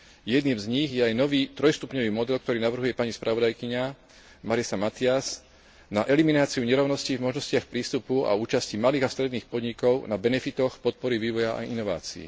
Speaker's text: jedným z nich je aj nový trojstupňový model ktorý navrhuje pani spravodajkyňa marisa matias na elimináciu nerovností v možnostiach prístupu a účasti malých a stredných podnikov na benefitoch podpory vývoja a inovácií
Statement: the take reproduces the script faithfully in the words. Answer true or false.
true